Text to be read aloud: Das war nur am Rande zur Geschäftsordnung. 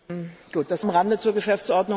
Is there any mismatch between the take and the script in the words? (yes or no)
yes